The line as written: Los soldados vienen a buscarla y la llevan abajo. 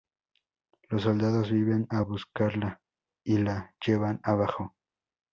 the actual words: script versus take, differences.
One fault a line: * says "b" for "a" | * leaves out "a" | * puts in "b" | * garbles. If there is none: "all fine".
all fine